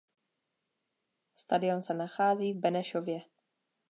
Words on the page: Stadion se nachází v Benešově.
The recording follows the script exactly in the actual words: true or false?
true